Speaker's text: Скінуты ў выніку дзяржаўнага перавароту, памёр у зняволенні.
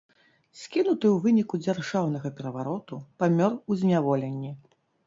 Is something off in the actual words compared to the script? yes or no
no